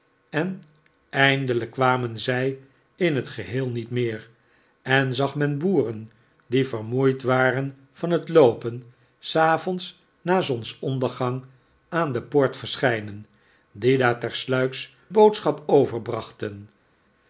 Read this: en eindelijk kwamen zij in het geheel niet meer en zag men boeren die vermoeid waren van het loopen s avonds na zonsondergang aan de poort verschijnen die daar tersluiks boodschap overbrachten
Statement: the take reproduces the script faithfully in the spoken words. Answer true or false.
true